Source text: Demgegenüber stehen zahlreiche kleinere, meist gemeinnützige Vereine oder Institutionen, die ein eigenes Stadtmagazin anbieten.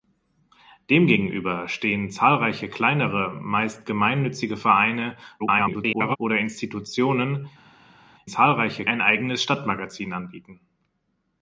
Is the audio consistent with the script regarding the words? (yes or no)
no